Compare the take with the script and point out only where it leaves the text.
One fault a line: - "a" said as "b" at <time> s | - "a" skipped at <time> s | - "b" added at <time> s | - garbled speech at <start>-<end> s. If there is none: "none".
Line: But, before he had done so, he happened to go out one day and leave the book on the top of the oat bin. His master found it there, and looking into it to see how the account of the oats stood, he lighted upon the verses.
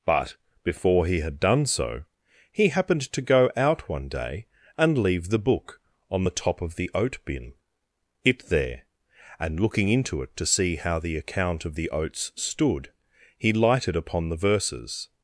- "His master found" skipped at 7.5 s